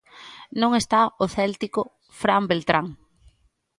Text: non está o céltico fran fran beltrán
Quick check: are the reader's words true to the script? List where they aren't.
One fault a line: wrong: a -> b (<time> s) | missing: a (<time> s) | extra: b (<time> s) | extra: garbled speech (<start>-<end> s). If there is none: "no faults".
missing: fran (2.4 s)